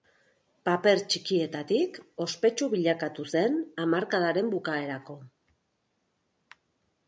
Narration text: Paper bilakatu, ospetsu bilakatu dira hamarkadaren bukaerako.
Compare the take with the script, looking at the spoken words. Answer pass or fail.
fail